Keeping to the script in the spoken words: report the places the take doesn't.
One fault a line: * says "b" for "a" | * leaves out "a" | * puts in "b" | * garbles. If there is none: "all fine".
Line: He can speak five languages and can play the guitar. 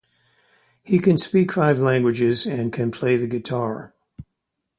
all fine